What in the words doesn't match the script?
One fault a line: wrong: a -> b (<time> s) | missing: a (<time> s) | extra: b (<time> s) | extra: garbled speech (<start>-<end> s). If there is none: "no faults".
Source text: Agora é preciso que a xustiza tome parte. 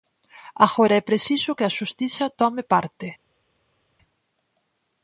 no faults